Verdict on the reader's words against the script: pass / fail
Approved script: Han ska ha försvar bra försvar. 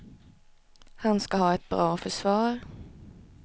fail